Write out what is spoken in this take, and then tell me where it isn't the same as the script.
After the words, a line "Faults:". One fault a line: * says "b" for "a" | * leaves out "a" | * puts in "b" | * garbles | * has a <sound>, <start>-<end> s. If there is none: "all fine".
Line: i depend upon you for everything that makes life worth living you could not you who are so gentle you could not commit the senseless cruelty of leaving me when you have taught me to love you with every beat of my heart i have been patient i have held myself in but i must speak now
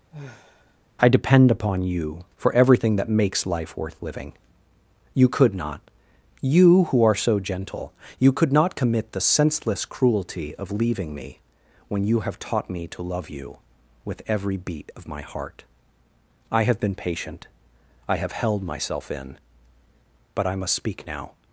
i depend upon you for everything that makes life worth living you could not you who are so gentle you could not commit the senseless cruelty of leaving me when you have taught me to love you with every beat of my heart i have been patient i have held myself in but i must speak now
Faults:
* has a sigh, 0.1-0.8 s